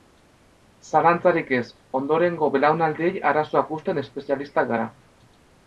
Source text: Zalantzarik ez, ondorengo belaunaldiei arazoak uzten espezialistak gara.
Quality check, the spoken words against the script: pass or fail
pass